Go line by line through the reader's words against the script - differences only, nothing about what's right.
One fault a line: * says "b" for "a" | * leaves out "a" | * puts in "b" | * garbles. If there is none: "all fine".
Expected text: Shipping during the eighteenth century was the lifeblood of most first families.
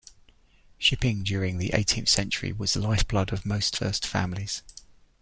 all fine